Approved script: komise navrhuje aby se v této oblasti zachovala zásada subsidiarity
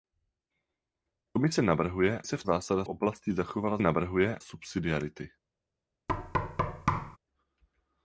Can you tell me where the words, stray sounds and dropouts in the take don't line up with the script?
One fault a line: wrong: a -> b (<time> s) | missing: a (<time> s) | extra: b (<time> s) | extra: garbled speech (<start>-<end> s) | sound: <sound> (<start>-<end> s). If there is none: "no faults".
missing: aby (2.2 s)
wrong: této -> zásada (2.4 s)
wrong: zásada -> navrhuje (3.8 s)
sound: thud (6.1-7.2 s)